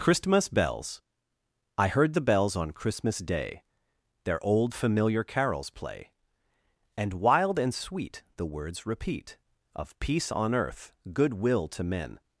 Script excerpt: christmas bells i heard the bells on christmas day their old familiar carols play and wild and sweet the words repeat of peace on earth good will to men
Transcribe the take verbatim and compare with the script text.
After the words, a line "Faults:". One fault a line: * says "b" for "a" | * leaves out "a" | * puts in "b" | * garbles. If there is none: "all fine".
christmas bells i heard the bells on christmas day their old familiar carols play and wild and sweet the words repeat of peace on earth good will to men
Faults:
all fine